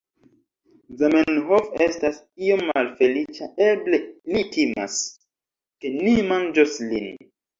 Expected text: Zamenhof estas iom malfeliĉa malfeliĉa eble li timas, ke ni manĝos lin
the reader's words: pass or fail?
fail